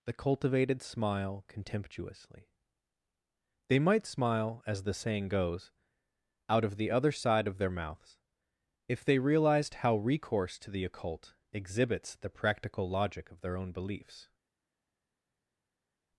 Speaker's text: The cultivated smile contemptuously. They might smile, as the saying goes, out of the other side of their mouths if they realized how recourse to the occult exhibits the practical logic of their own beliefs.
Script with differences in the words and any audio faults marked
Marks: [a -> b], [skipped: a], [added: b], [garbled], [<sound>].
The cultivated smile contemptuously. They might smile, as the saying goes, out of the other side of their mouths if they realized how recourse to the occult exhibits the practical logic of their own beliefs.